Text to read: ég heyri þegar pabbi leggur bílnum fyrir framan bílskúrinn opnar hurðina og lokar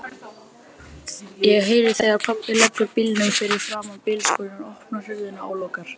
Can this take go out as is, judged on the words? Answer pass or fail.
pass